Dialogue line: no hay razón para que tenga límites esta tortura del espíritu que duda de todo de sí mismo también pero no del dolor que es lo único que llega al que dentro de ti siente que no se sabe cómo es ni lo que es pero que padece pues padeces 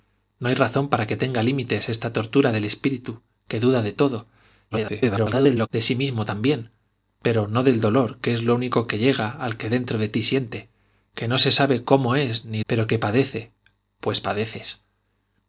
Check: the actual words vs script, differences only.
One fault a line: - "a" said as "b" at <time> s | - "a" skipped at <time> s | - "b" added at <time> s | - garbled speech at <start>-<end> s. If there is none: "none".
- garbled speech at 4.7-5.7 s
- "lo que es" skipped at 12.6 s